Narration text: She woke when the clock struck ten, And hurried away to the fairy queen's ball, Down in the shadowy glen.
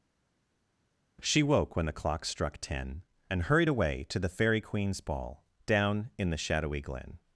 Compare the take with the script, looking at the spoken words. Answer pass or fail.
pass